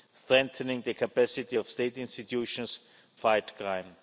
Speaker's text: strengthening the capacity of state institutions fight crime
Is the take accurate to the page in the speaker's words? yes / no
yes